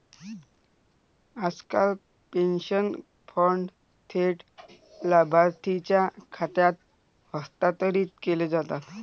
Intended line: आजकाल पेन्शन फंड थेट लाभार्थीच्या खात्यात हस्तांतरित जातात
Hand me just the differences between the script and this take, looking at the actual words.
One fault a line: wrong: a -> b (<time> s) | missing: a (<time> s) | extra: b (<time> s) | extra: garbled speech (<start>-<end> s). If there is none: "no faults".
extra: केले (8.2 s)